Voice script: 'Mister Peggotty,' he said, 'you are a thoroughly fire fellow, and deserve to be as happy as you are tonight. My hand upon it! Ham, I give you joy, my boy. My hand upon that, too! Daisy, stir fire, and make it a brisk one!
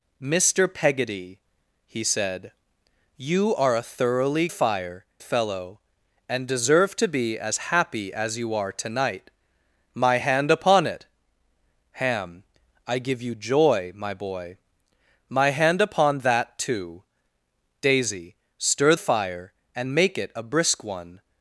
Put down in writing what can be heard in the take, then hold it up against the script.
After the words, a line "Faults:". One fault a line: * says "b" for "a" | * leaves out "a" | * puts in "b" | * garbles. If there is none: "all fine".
'Mister Peggotty,' he said, 'you are a thoroughly fire fellow, and deserve to be as happy as you are tonight. My hand upon it! Ham, I give you joy, my boy. My hand upon that, too! Daisy, stir fire, and make it a brisk one!
Faults:
all fine